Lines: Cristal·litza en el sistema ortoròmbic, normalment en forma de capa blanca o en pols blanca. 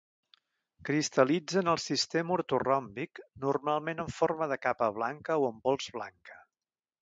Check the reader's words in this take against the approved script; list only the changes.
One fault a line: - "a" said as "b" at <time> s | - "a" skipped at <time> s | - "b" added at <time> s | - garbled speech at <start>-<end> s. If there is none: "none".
none